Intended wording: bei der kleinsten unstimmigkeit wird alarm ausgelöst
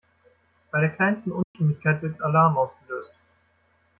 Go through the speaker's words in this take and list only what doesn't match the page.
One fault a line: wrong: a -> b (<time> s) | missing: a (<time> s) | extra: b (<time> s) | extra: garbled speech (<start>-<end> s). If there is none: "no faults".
no faults